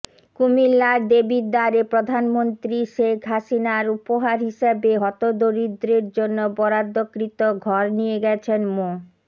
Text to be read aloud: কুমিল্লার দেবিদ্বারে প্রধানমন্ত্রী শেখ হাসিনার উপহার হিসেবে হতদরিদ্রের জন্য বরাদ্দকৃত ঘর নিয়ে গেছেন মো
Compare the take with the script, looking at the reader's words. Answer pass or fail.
pass